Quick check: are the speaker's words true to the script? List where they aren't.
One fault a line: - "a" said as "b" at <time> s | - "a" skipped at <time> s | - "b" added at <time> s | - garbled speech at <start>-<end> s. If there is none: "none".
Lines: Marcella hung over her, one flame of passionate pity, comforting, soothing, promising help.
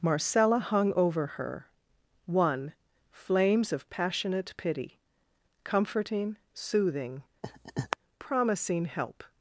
- "flame" said as "flames" at 3.1 s